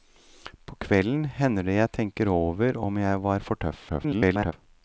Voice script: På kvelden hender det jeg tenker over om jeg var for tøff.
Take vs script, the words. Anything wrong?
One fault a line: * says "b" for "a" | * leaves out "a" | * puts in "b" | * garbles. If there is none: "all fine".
* garbles